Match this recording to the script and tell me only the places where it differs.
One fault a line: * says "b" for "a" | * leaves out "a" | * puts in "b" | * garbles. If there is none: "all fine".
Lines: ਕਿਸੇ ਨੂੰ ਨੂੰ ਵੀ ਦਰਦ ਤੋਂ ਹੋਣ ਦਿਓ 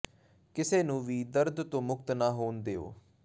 * leaves out "ਨੂੰ"
* puts in "ਮੁਕਤ ਨਾ"